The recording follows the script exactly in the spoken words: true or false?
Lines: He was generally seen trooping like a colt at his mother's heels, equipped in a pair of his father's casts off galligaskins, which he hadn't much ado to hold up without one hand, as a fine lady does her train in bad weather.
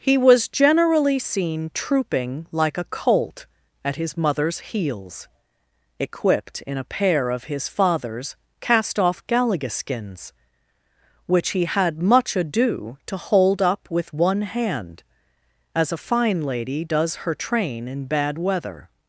false